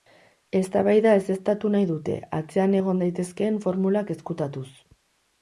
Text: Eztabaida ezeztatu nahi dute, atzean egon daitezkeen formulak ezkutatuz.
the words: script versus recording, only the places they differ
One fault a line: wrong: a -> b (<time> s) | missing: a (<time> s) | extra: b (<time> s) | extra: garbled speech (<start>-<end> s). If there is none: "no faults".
no faults